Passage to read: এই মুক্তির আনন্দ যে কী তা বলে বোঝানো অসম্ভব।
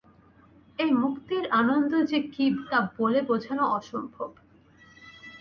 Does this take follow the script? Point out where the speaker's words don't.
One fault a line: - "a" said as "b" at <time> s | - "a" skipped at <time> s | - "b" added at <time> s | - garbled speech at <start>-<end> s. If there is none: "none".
none